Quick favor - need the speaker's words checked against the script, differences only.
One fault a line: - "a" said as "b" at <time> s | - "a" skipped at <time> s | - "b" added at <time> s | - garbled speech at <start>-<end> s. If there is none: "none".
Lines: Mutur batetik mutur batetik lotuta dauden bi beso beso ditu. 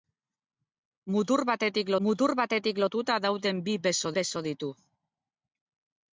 none